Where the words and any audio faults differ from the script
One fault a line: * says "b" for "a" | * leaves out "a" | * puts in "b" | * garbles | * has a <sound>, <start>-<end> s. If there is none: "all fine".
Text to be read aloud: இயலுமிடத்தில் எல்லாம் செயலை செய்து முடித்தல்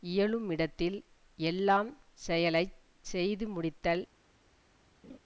* has a laugh, 5.0-5.2 s